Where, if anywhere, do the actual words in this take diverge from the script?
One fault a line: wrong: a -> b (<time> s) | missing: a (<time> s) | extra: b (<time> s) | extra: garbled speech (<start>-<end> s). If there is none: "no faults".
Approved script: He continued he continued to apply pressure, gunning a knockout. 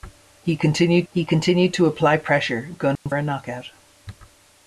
no faults